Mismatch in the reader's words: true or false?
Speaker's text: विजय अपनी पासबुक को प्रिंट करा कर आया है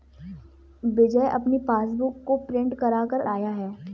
false